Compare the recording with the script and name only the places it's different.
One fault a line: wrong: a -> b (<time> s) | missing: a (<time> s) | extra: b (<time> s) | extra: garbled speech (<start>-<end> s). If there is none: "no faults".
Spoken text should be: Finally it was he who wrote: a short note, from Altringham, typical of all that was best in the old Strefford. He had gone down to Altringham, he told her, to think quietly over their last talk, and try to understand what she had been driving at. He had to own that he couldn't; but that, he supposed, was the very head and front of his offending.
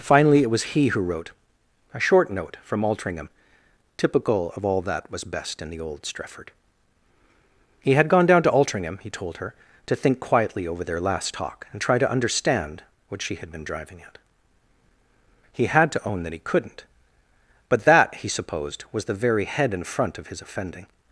no faults